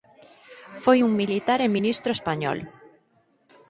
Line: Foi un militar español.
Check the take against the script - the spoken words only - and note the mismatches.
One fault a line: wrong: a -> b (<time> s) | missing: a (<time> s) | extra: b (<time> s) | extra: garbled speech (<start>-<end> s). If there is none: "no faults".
extra: e ministro (1.6 s)